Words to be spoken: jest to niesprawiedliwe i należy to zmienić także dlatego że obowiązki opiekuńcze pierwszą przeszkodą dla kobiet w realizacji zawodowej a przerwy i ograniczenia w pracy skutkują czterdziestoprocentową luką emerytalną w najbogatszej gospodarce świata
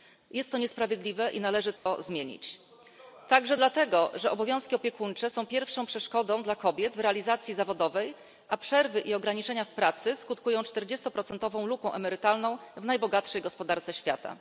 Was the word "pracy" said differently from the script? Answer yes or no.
no